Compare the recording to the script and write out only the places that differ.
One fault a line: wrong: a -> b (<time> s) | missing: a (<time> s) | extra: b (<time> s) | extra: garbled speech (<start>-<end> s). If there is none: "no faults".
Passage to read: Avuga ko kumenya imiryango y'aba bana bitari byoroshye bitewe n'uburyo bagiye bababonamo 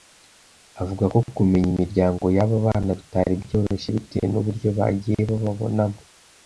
no faults